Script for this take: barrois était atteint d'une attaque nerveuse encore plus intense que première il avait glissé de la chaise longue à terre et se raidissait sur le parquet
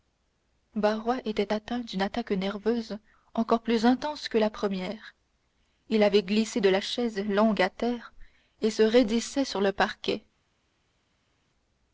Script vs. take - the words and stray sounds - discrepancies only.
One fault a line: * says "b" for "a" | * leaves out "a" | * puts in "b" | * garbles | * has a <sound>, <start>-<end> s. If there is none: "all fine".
* puts in "la"